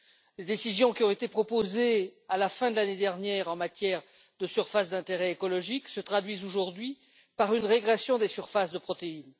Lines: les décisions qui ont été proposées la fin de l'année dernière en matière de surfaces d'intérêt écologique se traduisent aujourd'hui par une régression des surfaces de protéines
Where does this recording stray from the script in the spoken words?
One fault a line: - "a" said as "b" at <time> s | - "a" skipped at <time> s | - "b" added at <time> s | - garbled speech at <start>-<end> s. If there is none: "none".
- "à" added at 2.3 s